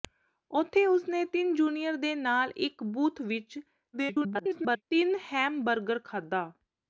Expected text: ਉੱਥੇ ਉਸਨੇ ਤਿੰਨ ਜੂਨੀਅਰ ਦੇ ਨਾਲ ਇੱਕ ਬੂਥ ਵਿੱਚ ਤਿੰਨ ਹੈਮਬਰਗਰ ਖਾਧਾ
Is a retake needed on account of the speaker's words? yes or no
yes